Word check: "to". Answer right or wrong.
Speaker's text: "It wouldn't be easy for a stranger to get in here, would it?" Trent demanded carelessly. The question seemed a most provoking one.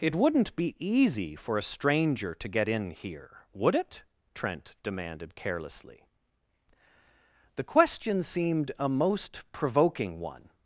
right